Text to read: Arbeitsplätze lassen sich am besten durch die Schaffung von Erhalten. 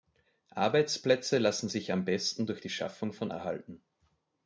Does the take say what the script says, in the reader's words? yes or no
yes